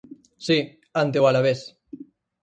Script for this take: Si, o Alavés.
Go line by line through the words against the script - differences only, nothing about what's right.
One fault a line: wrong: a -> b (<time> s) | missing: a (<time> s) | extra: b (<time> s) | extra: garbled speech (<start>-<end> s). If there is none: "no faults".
extra: ante (1.0 s)